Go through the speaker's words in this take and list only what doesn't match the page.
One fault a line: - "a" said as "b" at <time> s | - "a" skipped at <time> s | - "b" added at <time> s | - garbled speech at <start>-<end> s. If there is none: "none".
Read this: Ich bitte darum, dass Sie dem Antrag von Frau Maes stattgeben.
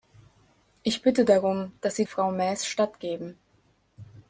- "dem Antrag von" skipped at 2.1 s